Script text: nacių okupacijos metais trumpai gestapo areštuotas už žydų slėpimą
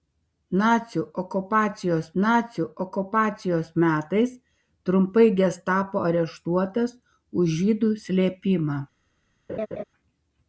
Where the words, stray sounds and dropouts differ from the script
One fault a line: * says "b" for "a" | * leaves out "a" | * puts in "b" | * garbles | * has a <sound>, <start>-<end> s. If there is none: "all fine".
* puts in "nacių okupacijos"
* has a laugh, 9.5-9.8 s